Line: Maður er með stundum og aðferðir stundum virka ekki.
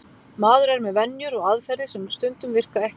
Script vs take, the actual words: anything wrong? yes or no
yes